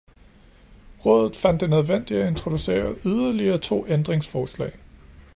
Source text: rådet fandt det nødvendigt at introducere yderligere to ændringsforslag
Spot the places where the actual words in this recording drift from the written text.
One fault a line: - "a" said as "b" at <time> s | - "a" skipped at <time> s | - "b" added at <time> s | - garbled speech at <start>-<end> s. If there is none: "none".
none